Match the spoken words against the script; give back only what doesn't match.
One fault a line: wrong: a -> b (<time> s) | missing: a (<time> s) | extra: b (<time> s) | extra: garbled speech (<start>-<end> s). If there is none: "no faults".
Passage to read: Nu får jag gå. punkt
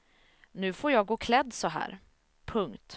extra: klädd så här (1.1 s)